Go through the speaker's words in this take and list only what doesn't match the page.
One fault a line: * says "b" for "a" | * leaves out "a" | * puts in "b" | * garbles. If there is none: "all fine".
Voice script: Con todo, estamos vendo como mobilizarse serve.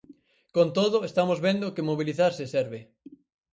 * says "que" for "como"